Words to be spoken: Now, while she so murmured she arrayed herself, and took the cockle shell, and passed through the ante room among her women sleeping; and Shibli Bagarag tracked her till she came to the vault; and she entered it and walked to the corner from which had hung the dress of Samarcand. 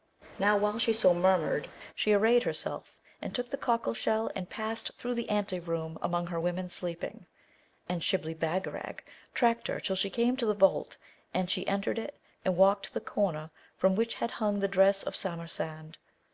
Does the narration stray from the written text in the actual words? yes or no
no